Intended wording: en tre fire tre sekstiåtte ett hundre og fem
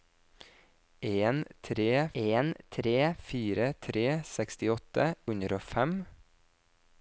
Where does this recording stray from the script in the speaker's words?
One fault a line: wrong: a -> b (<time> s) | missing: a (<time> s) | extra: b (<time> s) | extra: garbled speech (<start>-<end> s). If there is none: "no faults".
extra: en tre (2.2 s)
missing: ett (5.1 s)